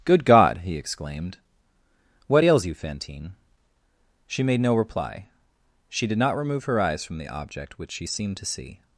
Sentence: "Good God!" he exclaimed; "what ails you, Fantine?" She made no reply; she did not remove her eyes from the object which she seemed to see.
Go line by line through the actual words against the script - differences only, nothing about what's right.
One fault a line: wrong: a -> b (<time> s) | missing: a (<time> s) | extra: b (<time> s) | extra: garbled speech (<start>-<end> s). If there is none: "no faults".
no faults